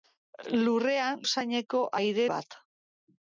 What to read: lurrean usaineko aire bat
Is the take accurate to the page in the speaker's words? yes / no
yes